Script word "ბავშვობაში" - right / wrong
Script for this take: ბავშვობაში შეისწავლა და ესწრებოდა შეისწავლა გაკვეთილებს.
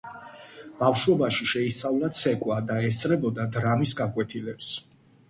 right